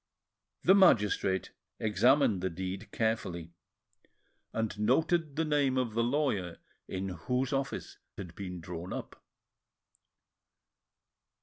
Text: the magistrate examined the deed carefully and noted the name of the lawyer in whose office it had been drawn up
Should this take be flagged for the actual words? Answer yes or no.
yes